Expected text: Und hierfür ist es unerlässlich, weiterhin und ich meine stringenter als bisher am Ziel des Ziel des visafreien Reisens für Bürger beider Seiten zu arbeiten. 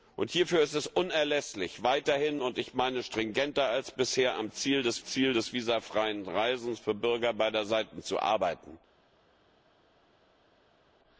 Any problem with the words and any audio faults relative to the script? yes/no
no